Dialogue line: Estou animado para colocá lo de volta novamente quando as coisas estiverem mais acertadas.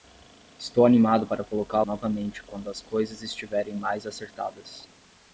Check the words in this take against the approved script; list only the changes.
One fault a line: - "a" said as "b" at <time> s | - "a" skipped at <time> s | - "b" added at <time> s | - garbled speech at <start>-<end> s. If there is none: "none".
- "lo de volta" skipped at 1.8 s